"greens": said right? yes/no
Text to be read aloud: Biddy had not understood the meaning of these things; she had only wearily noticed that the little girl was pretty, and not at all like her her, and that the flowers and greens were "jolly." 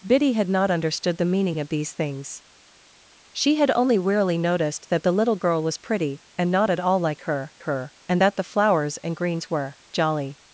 yes